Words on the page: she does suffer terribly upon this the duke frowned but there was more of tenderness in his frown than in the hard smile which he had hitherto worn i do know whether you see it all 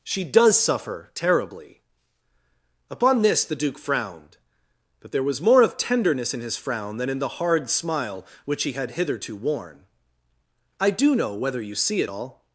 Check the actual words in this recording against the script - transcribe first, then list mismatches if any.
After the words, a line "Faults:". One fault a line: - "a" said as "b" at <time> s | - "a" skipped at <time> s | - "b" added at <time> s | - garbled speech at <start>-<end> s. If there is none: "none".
she does suffer terribly upon this the duke frowned but there was more of tenderness in his frown than in the hard smile which he had hitherto worn i do know whether you see it all
Faults:
none